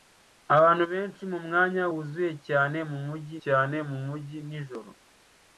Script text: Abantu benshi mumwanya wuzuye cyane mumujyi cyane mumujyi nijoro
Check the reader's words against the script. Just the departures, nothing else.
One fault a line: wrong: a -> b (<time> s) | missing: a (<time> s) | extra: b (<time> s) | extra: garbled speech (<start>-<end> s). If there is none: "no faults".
no faults